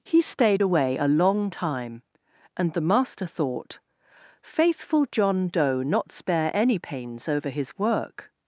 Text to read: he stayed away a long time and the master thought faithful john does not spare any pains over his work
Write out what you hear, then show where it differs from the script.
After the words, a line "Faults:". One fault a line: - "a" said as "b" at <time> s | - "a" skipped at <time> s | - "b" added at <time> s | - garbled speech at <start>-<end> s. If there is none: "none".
he stayed away a long time and the master thought faithful john doe not spare any pains over his work
Faults:
- "does" said as "doe" at 5.5 s